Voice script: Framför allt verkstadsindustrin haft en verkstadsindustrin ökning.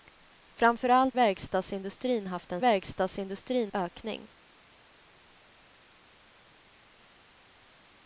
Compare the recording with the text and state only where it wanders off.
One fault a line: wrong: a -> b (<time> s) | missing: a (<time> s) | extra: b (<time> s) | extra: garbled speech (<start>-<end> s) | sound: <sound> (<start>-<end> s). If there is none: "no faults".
no faults